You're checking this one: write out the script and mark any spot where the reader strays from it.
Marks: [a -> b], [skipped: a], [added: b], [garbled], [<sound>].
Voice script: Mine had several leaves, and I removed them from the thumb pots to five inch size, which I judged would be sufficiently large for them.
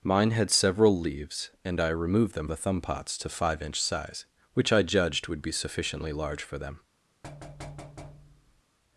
Mine had several leaves, and I removed them [skipped: from] the thumb pots to five inch size, which I judged would be sufficiently large for them. [thud]